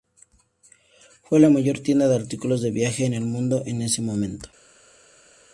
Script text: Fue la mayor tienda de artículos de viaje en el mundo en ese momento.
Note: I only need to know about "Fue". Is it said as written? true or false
true